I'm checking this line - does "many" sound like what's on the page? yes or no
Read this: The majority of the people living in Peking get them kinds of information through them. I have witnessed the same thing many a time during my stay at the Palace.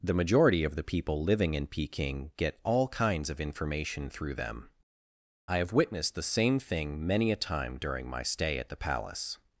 yes